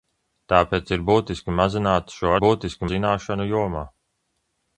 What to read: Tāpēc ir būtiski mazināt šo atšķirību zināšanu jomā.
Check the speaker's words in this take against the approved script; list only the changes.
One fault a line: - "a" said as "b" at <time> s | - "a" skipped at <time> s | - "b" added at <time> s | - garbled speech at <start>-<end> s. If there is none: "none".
- "atšķirību" said as "būtiski" at 2.4 s